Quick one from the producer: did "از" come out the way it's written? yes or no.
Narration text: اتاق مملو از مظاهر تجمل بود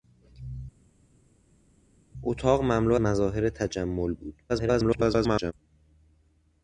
no